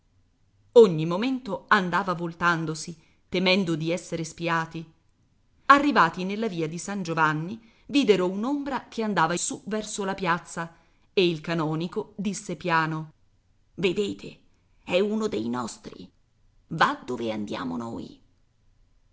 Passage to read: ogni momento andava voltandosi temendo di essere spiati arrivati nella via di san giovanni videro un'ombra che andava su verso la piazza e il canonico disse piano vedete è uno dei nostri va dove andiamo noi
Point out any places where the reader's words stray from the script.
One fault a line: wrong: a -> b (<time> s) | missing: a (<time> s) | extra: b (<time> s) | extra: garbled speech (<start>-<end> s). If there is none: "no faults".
no faults